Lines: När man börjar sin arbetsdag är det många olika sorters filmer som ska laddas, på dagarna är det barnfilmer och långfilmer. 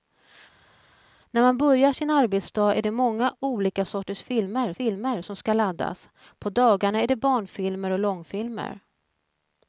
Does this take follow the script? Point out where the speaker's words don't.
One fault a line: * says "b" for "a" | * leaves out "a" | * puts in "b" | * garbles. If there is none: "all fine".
* puts in "filmer"